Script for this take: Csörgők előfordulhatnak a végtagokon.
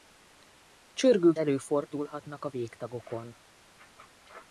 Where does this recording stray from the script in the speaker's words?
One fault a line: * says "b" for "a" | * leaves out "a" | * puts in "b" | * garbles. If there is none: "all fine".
all fine